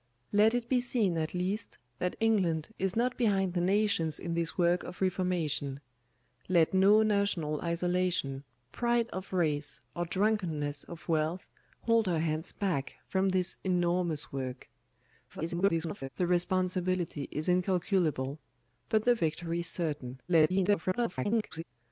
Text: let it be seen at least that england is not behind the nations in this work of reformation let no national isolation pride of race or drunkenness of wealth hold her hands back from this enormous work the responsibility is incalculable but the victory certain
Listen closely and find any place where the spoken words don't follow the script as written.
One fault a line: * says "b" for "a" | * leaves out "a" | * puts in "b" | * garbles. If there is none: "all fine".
* garbles
* garbles